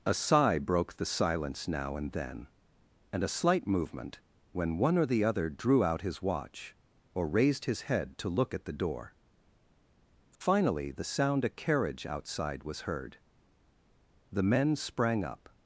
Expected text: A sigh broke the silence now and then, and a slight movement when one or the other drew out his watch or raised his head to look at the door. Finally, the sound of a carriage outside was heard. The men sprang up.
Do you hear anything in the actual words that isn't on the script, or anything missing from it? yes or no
yes